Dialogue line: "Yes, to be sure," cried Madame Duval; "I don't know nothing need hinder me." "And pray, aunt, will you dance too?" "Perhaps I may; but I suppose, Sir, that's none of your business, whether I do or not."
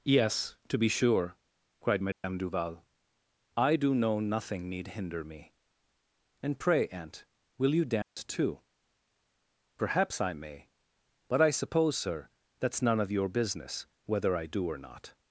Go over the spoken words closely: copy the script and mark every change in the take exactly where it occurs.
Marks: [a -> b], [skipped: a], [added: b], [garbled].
"Yes, to be sure," cried Madame Duval; "I [don't -> do] know nothing need hinder me." "And pray, aunt, will you dance too?" "Perhaps I may; but I suppose, Sir, that's none of your business, whether I do or not."